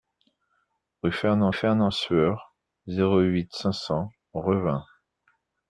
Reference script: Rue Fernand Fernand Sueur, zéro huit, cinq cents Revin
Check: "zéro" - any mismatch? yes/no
no